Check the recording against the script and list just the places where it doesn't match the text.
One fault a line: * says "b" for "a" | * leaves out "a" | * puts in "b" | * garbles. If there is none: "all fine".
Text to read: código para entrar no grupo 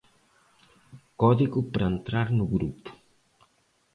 all fine